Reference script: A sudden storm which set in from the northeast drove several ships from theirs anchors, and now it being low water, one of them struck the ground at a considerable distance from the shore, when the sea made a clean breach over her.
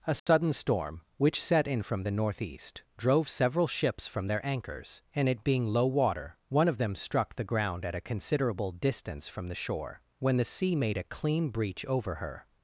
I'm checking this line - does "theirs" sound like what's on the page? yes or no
no